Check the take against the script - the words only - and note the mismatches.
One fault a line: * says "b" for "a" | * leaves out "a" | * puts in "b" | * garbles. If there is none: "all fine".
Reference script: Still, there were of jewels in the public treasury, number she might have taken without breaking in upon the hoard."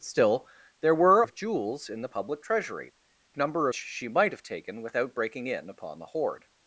all fine